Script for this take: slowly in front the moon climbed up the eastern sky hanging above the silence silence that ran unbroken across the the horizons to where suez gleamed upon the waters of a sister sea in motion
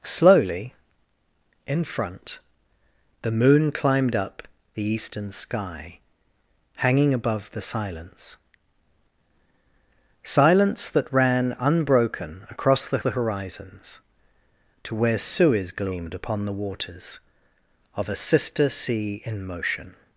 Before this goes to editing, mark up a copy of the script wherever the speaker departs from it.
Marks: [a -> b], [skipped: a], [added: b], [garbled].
slowly in front the moon climbed up the eastern sky hanging above the silence silence that ran unbroken across the the horizons to where suez gleamed upon the waters of a sister sea in motion